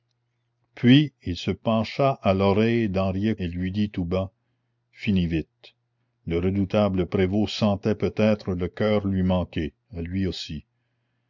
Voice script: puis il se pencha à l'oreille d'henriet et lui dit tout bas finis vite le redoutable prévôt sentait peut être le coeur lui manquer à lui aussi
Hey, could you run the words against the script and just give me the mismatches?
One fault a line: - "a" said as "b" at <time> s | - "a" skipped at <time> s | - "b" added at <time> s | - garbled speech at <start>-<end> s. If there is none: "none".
none